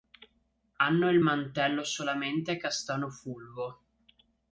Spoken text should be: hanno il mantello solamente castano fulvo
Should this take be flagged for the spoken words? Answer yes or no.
no